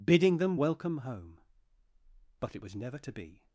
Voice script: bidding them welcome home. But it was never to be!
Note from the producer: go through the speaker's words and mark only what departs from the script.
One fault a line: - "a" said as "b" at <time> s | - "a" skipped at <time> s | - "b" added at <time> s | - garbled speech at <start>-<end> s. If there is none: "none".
none